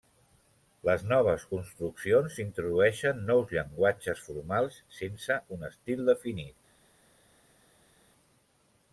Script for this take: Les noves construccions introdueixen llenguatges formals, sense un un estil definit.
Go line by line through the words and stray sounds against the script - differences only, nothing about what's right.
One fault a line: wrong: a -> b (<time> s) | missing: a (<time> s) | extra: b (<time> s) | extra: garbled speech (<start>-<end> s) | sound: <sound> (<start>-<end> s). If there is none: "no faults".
extra: nous (3.3 s)
missing: un (5.7 s)